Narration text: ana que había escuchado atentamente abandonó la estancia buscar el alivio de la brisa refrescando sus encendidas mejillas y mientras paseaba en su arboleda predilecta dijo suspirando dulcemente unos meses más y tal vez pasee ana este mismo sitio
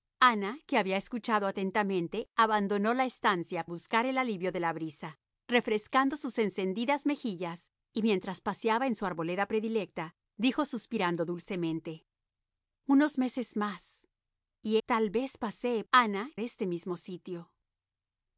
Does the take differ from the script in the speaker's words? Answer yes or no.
no